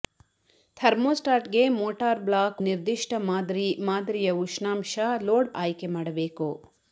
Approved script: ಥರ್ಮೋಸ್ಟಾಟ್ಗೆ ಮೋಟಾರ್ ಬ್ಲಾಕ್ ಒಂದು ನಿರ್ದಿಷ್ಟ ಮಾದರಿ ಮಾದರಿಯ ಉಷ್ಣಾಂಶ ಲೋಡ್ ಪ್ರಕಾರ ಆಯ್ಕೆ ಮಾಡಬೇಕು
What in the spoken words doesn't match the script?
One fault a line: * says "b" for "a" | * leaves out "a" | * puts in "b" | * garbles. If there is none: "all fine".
* leaves out "ಒಂದು"
* leaves out "ಪ್ರಕಾರ"